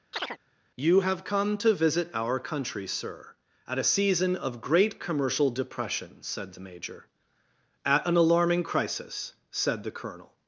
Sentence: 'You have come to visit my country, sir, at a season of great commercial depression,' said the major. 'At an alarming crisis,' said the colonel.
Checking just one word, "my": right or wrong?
wrong